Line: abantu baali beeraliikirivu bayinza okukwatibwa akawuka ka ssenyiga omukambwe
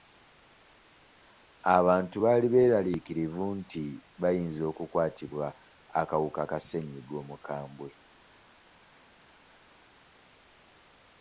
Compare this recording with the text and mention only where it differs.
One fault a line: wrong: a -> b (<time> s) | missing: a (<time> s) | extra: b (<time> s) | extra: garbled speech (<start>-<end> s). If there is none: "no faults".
extra: nti (3.6 s)